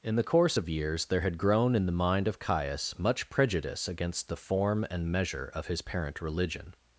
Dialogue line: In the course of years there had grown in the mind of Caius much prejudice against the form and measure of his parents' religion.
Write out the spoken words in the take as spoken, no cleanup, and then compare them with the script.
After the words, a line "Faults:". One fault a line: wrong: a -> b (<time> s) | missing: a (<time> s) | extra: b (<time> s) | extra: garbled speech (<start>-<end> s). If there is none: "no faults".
In the course of years there had grown in the mind of Caius much prejudice against the form and measure of his parent' religion.
Faults:
wrong: parents -> parent (5.8 s)